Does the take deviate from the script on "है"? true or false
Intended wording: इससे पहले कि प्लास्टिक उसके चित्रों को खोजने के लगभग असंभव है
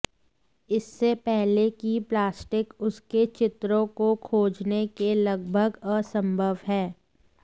false